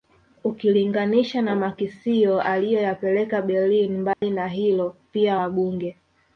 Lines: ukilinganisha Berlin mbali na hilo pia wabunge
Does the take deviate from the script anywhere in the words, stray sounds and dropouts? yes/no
yes